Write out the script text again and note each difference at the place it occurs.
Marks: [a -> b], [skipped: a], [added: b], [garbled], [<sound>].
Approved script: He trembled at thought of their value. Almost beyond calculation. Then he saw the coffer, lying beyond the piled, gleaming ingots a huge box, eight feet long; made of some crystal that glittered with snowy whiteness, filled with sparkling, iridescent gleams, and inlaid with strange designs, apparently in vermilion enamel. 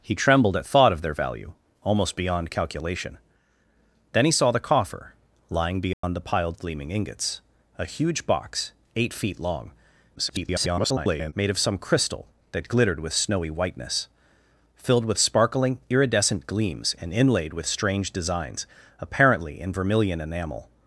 He trembled at thought of their value. Almost beyond calculation. Then he saw the coffer, lying beyond [dropout] the piled, gleaming ingots a huge box, eight feet long; [garbled] made of some crystal that glittered with snowy whiteness, filled with sparkling, iridescent gleams, and inlaid with strange designs, apparently in vermilion enamel.